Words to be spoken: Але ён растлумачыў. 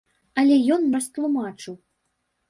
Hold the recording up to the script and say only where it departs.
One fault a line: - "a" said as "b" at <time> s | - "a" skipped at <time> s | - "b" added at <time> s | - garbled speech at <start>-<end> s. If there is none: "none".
none